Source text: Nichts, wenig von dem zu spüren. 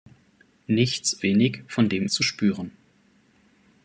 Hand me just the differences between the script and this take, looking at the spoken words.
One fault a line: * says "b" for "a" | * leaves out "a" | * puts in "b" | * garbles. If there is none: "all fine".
all fine